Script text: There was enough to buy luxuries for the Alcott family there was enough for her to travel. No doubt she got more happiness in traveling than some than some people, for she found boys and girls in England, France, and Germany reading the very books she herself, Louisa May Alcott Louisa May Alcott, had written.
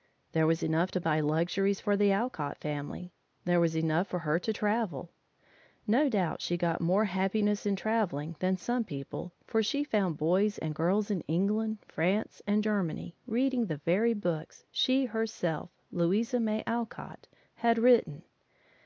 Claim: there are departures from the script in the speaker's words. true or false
true